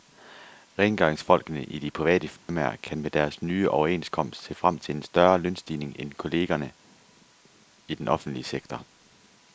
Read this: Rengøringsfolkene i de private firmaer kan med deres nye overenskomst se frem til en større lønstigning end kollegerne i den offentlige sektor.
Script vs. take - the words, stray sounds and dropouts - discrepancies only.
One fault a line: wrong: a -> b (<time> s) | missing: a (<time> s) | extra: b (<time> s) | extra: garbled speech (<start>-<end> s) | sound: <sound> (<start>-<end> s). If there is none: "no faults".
sound: dropout (2.4-2.5 s)